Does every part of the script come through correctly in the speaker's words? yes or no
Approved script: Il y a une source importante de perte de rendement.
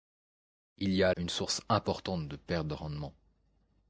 yes